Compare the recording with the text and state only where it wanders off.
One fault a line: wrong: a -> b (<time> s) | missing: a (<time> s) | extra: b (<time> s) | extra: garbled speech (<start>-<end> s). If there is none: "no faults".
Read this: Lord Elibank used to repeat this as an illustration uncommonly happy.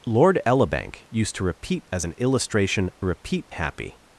missing: this (1.9 s)
wrong: uncommonly -> repeat (3.0 s)